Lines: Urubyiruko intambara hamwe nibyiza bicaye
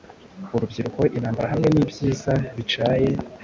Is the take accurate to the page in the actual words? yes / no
yes